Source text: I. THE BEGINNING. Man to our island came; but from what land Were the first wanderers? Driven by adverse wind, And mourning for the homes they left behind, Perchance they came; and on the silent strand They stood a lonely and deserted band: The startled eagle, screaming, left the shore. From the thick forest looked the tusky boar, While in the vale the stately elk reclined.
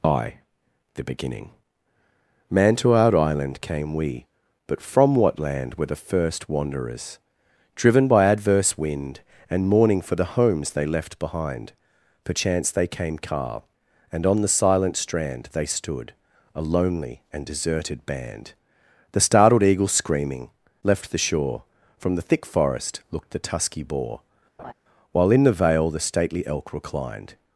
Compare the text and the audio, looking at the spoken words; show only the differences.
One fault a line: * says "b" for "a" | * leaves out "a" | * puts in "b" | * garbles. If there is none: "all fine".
* puts in "we"
* puts in "car"